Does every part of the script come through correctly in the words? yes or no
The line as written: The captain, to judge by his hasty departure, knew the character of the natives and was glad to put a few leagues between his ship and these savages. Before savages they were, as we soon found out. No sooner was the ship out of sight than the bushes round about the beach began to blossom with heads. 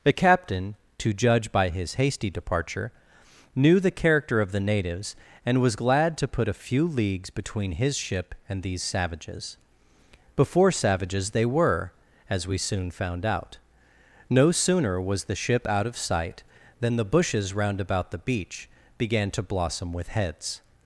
yes